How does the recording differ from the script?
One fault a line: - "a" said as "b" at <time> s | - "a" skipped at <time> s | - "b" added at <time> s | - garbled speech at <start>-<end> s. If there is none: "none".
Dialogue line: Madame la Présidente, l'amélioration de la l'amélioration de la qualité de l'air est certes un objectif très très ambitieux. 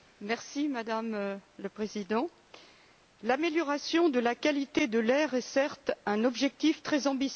- "l'amélioration de la" skipped at 4.3 s
- "très" skipped at 7.1 s